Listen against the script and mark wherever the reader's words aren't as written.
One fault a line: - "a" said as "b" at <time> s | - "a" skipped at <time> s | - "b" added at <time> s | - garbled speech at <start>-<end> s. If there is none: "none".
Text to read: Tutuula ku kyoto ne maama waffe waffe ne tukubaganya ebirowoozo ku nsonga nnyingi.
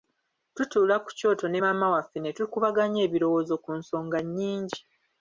- "waffe" skipped at 2.2 s